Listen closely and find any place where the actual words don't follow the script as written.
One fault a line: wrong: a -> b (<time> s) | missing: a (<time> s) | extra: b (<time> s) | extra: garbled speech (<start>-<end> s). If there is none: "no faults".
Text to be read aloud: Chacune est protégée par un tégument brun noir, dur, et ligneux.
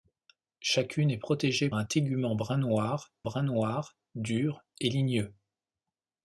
missing: par (1.7 s)
extra: brun noir (3.2 s)